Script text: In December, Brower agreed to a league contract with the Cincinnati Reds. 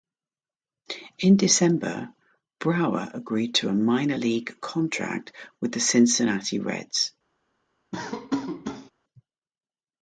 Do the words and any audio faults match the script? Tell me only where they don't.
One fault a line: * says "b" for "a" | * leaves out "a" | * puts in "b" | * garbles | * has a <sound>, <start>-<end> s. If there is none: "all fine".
* puts in "minor"
* has a laugh, 7.9-8.9 s